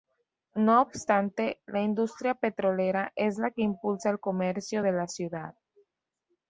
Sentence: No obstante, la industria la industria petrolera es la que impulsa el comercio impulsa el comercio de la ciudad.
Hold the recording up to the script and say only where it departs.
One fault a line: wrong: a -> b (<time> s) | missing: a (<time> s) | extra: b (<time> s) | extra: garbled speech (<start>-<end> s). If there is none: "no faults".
missing: la industria (2.3 s)
missing: impulsa el comercio (4.8 s)